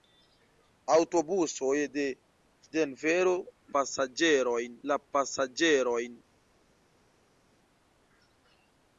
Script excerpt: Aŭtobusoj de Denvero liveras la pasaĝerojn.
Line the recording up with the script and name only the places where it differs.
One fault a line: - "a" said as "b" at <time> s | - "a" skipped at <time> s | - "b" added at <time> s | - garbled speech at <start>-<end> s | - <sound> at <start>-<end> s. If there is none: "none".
- "liveras" said as "pasaĝerojn" at 3.8 s